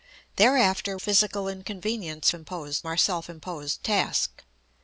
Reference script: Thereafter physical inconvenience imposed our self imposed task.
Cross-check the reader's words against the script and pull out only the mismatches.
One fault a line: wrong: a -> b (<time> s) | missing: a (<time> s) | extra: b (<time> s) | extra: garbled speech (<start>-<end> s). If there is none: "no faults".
no faults